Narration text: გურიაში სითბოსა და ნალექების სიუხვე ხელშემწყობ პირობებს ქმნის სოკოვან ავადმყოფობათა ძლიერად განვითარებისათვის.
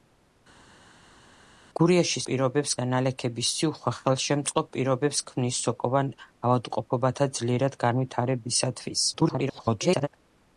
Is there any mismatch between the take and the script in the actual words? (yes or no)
yes